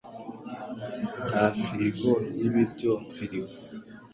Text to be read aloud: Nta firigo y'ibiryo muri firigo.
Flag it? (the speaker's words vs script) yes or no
yes